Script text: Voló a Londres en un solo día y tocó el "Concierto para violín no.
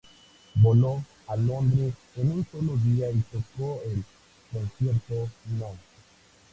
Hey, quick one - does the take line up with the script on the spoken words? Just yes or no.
no